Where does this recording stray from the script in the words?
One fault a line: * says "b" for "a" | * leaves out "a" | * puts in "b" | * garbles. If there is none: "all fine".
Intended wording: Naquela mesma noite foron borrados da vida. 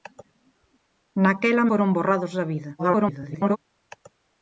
* leaves out "mesma noite"
* garbles